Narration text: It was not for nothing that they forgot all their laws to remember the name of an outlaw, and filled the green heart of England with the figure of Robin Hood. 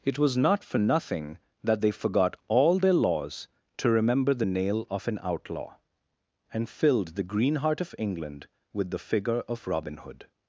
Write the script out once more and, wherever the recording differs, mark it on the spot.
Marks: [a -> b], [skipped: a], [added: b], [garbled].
It was not for nothing that they forgot all their laws to remember the [name -> nail] of an outlaw, and filled the green heart of England with the figure of Robin Hood.